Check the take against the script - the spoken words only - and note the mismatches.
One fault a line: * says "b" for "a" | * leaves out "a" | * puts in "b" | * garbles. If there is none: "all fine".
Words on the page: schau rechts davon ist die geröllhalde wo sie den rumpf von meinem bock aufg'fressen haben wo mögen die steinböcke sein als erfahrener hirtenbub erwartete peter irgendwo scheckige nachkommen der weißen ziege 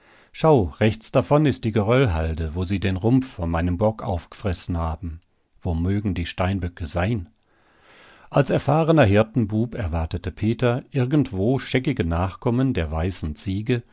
all fine